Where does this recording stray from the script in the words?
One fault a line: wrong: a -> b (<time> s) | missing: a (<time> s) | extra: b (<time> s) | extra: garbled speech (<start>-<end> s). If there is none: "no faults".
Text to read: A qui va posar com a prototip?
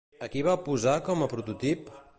no faults